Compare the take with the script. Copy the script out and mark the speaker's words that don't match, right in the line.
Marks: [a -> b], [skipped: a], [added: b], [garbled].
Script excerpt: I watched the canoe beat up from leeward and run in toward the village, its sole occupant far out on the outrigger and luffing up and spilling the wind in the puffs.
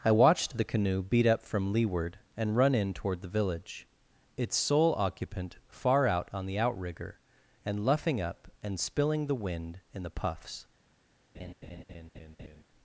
I watched the canoe beat up from leeward and run in toward the village, its sole occupant far out on the outrigger and luffing up and spilling the wind in the puffs.